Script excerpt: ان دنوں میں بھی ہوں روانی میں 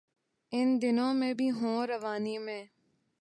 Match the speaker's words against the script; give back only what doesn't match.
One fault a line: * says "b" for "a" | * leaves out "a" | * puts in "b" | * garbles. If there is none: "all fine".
all fine